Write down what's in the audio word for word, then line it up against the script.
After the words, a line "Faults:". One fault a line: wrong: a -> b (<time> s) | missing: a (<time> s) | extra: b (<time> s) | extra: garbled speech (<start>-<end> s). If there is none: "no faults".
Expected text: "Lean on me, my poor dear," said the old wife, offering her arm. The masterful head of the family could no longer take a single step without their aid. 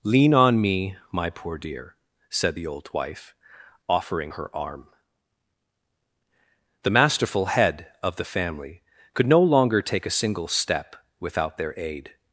"Lean on me, my poor dear," said the old wife, offering her arm. The masterful head of the family could no longer take a single step without their aid.
Faults:
no faults